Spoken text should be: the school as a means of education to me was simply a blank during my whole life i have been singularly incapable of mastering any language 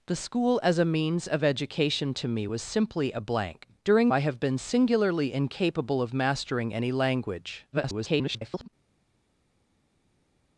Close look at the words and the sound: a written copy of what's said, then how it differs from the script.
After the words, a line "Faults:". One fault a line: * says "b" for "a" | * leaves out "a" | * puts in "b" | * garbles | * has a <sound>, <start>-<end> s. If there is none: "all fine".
the school as a means of education to me was simply a blank during i have been singularly incapable of mastering any language [garbled]
Faults:
* leaves out "my whole life"
* garbles